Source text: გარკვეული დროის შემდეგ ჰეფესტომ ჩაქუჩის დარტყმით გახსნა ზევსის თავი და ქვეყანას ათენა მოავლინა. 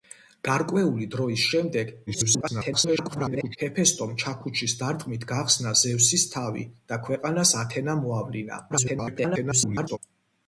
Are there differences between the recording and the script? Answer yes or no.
yes